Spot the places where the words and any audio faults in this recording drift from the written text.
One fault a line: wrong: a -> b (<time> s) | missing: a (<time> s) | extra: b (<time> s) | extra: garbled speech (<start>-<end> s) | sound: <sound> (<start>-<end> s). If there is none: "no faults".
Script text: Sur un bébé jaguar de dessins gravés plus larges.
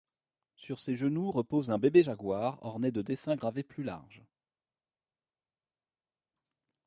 extra: ses genoux repose (0.8 s)
extra: orné (2.6 s)